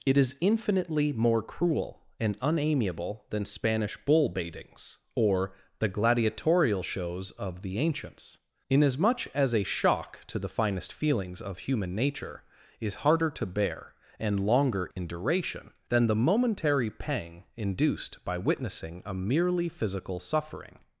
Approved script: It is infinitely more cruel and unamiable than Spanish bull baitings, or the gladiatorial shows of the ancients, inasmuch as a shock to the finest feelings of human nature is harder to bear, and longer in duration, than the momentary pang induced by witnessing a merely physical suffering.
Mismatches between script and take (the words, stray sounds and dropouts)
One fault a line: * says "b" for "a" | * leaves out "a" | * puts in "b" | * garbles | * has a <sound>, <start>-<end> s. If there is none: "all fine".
* has a dropout, 14.9-15.0 s